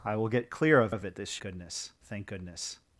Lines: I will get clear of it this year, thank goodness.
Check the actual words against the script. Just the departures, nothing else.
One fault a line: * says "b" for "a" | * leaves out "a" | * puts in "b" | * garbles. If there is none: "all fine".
* puts in "of"
* says "goodness" for "year"